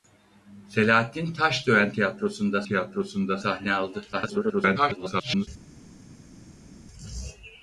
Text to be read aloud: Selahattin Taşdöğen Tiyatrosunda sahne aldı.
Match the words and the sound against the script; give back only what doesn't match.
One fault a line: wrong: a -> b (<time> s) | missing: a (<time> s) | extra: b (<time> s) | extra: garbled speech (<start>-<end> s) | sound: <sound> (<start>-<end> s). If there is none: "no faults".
extra: Tiyatrosunda (2.6 s)
extra: garbled speech (4.1-5.5 s)